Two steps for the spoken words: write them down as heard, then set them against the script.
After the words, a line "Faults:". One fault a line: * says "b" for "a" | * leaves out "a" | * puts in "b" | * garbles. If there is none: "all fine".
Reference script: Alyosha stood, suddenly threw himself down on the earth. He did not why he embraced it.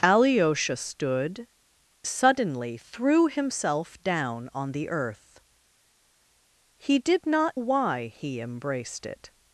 Alyosha stood, suddenly threw himself down on the earth. He did not why he embraced it.
Faults:
all fine